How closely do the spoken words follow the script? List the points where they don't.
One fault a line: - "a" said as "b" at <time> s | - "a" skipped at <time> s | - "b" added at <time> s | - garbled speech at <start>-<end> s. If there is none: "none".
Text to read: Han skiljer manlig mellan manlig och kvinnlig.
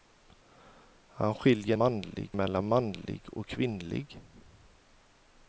none